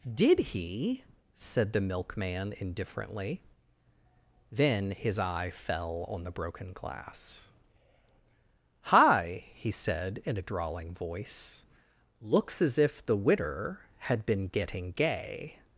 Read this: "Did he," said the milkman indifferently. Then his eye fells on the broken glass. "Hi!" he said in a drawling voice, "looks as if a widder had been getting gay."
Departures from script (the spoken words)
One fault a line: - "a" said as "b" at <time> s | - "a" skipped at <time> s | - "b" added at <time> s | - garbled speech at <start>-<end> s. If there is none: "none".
- "fells" said as "fell" at 5.5 s
- "a" said as "the" at 13.0 s